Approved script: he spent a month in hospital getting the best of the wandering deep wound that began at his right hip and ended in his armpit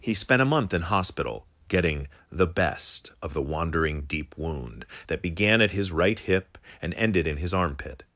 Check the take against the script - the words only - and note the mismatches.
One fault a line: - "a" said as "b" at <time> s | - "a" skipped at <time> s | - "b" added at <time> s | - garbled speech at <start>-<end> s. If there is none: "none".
none